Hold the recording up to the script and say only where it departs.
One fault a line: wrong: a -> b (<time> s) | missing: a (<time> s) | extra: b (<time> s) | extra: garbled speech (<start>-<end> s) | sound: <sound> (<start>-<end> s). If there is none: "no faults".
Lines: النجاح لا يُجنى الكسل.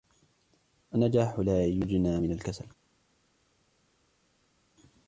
extra: من (2.2 s)